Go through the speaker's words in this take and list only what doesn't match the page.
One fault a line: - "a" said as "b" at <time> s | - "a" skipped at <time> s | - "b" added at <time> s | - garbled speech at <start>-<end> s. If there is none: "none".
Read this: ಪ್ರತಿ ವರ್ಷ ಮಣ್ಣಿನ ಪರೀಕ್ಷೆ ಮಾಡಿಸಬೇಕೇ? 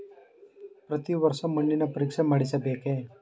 none